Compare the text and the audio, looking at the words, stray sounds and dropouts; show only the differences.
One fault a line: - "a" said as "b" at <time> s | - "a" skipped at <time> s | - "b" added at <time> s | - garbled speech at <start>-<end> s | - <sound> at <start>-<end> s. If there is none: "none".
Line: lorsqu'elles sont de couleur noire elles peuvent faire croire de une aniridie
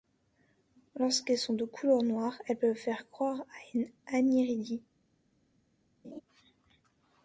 - "de" said as "à" at 3.4 s
- laugh at 6.0-6.2 s